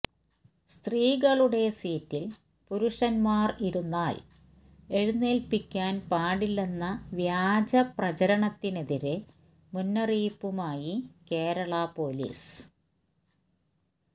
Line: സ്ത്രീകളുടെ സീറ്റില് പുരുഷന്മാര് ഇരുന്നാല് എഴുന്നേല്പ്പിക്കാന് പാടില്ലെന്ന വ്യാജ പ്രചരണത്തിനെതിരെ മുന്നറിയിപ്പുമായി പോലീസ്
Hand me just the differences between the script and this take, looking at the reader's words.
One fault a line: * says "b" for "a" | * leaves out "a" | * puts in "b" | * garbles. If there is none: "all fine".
* puts in "കേരള"